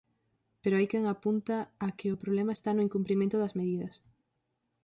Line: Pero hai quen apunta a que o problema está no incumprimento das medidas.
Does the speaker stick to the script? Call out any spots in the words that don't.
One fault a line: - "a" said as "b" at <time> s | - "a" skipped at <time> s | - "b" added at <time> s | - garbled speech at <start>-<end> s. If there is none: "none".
none